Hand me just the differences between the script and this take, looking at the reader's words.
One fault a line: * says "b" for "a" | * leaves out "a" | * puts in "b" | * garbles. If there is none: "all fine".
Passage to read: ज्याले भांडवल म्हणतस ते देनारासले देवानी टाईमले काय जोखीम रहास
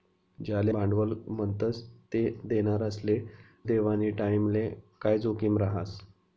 all fine